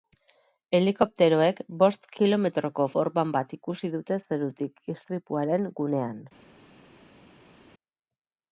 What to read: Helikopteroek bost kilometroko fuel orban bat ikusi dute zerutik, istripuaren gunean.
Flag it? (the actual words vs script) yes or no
yes